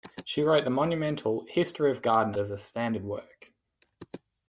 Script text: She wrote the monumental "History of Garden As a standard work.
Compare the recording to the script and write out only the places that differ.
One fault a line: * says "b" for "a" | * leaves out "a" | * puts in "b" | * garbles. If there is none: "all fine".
all fine